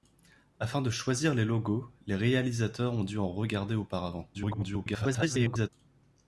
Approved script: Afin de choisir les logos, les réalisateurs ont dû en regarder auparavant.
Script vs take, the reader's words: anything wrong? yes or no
yes